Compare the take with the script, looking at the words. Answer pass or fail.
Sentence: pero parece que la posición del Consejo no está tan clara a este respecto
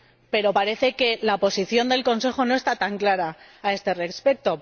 pass